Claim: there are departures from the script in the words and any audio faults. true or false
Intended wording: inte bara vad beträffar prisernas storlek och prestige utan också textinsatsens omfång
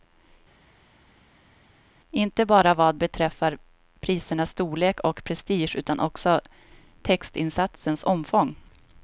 false